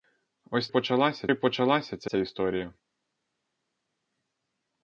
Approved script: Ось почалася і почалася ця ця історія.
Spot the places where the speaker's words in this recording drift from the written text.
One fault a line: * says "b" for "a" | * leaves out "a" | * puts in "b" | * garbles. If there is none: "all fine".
all fine